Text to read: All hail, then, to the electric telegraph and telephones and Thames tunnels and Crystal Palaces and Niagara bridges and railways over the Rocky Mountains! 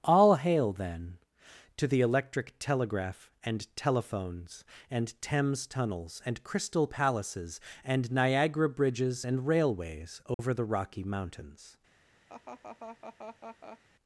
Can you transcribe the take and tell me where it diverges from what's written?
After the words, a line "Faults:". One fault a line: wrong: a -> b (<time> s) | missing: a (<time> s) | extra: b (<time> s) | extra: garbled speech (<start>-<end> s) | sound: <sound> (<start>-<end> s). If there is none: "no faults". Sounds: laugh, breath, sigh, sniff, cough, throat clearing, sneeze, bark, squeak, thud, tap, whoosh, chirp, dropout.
All hail, then, to the electric telegraph and telephones and Thames tunnels and Crystal Palaces and Niagara bridges and railways over the Rocky Mountains!
Faults:
sound: dropout (10.3-10.4 s)
sound: laugh (12.3-13.8 s)